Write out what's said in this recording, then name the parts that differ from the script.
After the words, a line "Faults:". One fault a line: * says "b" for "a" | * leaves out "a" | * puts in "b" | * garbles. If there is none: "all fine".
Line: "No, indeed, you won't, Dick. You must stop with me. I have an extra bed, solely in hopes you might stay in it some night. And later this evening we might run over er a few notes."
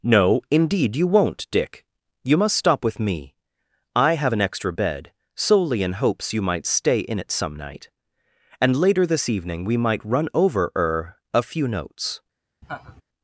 "No, indeed, you won't, Dick. You must stop with me. I have an extra bed, solely in hopes you might stay in it some night. And later this evening we might run over er a few notes."
Faults:
all fine